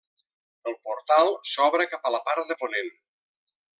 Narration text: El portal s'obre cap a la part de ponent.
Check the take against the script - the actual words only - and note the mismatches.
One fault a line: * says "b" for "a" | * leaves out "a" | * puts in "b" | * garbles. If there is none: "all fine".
all fine